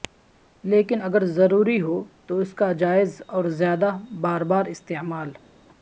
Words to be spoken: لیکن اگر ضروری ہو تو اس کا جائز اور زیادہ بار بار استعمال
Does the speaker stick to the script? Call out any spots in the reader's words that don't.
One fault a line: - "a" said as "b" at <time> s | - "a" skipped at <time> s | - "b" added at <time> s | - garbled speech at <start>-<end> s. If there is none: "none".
none